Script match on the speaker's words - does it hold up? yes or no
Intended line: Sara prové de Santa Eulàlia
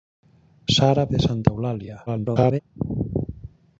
no